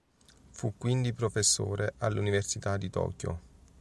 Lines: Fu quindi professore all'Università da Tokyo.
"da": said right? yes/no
no